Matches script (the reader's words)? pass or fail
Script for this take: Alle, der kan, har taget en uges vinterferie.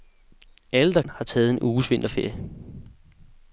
fail